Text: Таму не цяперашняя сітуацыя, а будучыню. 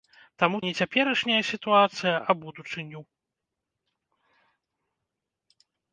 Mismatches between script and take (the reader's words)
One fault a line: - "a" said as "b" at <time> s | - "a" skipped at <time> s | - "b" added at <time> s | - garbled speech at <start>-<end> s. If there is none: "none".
none